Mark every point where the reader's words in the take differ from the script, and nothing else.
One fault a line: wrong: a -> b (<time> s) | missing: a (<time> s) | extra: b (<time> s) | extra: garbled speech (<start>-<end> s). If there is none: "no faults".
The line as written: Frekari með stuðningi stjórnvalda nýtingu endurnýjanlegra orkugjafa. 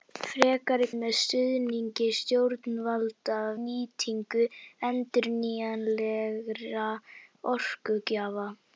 no faults